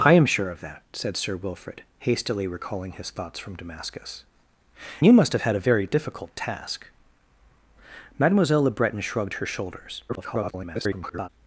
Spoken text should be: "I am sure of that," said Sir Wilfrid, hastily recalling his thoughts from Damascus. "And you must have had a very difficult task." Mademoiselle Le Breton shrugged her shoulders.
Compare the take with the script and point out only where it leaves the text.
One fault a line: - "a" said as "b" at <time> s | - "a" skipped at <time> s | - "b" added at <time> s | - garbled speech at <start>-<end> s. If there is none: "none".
- "And" skipped at 4.2 s
- garbled speech at 10.1-11.3 s